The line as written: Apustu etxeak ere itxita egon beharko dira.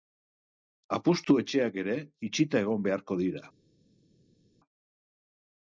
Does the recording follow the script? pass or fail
pass